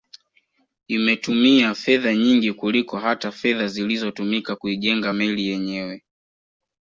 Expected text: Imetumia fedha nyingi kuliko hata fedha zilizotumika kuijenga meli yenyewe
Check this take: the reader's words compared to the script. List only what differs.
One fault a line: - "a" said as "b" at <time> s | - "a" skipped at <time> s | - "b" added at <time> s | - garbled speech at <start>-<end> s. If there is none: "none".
none